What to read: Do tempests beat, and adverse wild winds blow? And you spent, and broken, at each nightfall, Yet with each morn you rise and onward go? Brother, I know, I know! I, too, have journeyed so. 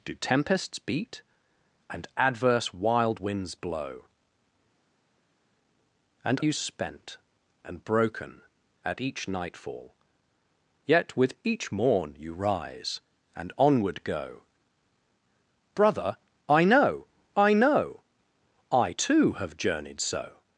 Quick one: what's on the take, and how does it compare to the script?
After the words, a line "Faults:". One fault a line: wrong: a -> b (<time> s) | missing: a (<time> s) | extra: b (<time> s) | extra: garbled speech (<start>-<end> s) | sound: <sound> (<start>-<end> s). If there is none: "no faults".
Do tempests beat, and adverse wild winds blow? And you spent, and broken, at each nightfall, Yet with each morn you rise and onward go? Brother, I know, I know! I, too, have journeyed so.
Faults:
no faults